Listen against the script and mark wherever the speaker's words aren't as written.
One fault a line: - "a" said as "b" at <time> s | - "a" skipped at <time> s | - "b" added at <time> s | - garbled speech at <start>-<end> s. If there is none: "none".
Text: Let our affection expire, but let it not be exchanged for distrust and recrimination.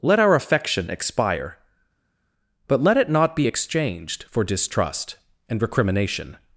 none